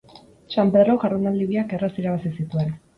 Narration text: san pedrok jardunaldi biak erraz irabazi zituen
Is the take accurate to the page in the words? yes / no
yes